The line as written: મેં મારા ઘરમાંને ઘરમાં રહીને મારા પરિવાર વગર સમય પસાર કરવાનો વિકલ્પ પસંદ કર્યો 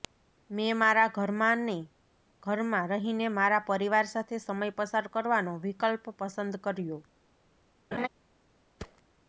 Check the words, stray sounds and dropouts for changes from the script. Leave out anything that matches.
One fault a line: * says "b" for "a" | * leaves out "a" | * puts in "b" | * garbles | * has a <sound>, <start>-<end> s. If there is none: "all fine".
* says "સાથે" for "વગર"
* has a laugh, 7.9-8.1 s
* has a thud, 8.8-9.0 s